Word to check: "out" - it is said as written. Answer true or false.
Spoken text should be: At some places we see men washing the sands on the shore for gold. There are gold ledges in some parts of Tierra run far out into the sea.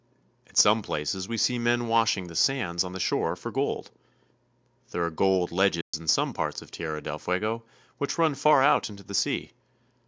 true